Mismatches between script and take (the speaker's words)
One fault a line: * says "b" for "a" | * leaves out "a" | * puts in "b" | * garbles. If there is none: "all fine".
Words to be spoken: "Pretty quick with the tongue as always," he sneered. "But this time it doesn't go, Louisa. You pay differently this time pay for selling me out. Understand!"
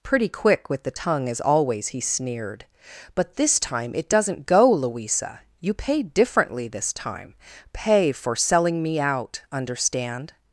all fine